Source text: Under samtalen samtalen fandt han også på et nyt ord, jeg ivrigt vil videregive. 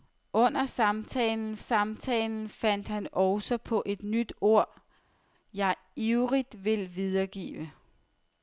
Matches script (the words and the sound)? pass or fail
pass